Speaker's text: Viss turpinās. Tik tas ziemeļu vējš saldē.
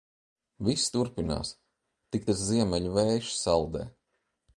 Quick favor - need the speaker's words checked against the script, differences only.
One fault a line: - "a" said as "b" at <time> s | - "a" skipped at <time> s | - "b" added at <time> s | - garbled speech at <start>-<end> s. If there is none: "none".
none